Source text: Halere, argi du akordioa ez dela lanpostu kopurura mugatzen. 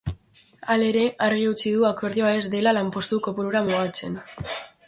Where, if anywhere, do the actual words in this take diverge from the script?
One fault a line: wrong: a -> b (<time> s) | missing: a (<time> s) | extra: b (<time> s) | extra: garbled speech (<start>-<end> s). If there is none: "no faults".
extra: utzi (1.5 s)